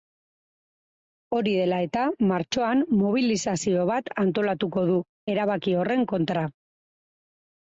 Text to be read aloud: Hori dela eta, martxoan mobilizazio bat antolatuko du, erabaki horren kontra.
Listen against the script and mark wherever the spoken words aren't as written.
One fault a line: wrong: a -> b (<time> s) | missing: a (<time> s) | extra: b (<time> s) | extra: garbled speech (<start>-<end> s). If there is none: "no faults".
no faults